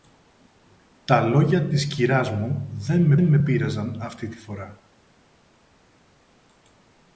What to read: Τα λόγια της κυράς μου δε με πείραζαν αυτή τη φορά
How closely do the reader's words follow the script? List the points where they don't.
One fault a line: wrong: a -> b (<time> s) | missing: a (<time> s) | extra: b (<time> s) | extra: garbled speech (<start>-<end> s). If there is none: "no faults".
extra: με (3.2 s)